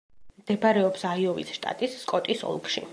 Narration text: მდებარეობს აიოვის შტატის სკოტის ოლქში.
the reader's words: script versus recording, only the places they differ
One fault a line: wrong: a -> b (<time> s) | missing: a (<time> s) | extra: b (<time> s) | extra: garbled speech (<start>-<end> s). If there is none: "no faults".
no faults